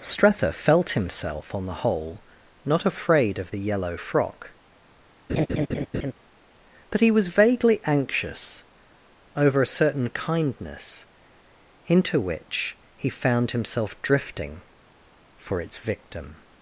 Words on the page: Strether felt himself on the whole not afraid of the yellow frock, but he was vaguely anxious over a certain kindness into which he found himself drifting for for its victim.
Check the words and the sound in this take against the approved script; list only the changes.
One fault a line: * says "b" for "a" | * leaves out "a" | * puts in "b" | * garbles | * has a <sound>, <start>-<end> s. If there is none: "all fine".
* has a laugh, 5.3-6.1 s
* leaves out "for"